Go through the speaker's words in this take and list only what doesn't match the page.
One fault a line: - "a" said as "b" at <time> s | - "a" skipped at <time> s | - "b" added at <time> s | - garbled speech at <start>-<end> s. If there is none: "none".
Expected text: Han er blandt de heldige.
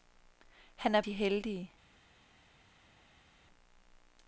- "blandt" skipped at 1.0 s